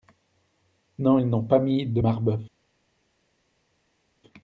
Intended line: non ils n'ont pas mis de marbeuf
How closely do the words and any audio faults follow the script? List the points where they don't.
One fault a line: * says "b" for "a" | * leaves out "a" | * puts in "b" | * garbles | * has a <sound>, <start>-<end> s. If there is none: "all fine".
all fine